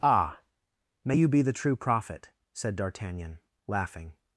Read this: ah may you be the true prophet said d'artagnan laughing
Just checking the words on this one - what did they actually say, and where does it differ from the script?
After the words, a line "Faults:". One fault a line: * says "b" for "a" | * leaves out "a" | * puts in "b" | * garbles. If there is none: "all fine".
ah may you be the true prophet said d'artagnan laughing
Faults:
all fine